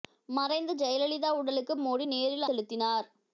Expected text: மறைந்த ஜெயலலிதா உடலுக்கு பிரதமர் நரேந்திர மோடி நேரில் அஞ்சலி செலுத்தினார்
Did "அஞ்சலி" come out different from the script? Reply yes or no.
yes